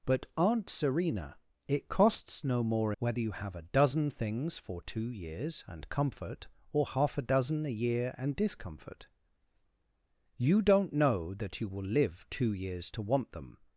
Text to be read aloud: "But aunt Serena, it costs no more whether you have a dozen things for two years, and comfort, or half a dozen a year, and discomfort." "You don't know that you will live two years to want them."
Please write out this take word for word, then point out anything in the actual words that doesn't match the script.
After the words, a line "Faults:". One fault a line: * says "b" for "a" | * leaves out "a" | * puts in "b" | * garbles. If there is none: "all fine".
"But aunt Serena, it costs no more whether you have a dozen things for two years, and comfort, or half a dozen a year, and discomfort." "You don't know that you will live two years to want them."
Faults:
all fine